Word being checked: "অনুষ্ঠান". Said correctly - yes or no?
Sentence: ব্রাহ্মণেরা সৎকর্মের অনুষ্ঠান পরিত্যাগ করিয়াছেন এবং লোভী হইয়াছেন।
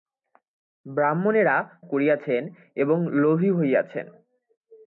no